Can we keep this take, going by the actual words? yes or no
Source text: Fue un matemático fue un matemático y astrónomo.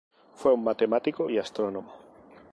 no